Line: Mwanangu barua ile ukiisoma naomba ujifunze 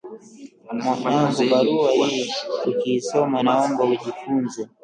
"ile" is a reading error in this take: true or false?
true